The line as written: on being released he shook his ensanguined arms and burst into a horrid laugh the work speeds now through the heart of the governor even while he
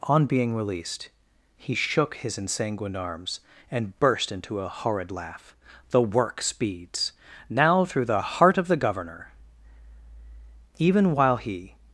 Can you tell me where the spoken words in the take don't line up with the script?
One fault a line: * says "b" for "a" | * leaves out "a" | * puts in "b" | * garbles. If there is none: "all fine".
all fine